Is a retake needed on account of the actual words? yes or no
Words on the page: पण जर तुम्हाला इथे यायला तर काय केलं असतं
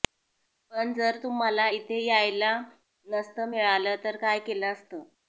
yes